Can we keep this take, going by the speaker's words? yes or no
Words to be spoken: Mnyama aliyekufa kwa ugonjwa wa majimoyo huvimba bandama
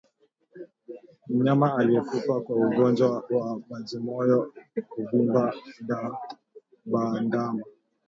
yes